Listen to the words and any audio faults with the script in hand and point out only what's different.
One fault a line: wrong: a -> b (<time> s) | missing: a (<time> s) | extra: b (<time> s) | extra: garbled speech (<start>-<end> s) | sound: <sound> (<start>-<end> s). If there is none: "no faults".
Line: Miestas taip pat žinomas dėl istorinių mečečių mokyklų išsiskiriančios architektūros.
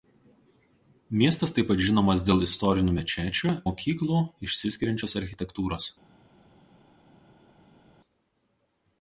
no faults